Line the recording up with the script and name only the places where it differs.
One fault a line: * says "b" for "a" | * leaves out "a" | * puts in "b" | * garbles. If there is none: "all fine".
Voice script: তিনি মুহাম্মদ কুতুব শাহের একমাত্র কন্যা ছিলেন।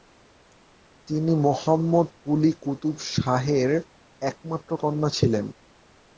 * puts in "কুলি"